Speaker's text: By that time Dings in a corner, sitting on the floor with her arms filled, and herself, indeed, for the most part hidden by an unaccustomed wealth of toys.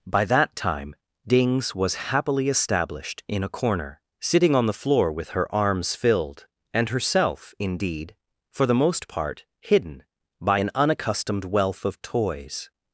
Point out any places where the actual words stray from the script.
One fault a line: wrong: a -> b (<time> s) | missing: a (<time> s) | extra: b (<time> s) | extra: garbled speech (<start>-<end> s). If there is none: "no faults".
extra: was happily established (1.8 s)